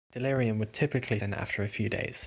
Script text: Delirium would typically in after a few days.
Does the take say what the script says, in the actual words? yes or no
yes